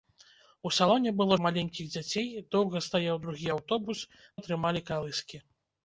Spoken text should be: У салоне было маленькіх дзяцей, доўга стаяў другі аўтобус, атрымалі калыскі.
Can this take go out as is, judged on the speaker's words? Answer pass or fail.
pass